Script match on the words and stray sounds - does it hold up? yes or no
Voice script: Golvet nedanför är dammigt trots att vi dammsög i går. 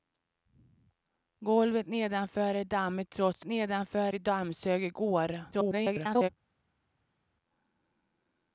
no